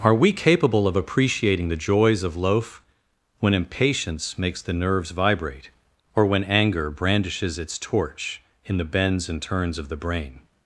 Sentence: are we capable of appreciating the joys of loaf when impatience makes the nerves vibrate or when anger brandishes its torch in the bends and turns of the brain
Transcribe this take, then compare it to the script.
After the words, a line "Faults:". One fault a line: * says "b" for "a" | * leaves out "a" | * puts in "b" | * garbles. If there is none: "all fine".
are we capable of appreciating the joys of loaf when impatience makes the nerves vibrate or when anger brandishes its torch in the bends and turns of the brain
Faults:
all fine